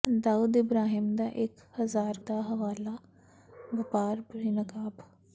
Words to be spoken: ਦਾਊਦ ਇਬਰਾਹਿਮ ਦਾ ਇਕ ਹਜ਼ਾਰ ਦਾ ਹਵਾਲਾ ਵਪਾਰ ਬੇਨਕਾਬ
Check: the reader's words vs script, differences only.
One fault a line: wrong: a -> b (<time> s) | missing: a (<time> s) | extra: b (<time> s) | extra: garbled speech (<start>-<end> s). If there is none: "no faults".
no faults